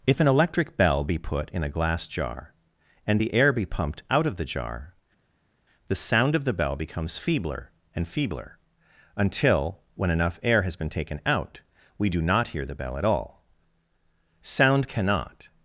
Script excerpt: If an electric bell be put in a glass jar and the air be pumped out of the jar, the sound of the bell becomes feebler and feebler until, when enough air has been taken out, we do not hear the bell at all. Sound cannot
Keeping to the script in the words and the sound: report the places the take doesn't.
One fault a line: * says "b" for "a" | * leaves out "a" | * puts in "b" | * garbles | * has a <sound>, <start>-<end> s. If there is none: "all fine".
all fine